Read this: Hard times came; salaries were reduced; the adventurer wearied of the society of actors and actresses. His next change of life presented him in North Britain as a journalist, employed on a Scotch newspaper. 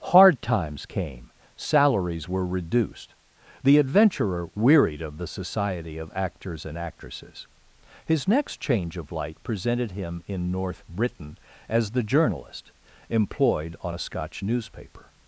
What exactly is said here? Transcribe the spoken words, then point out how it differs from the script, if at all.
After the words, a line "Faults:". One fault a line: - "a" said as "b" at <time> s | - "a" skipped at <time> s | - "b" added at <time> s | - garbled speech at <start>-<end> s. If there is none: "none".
Hard times came; salaries were reduced; the adventurer wearied of the society of actors and actresses. His next change of light presented him in North Britain as the journalist, employed on a Scotch newspaper.
Faults:
- "life" said as "light" at 9.1 s
- "a" said as "the" at 11.9 s